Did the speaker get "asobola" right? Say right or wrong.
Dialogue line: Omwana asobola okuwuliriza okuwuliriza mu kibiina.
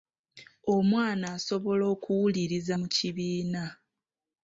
right